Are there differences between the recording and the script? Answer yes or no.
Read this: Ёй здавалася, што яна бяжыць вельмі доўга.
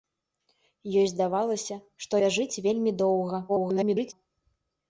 yes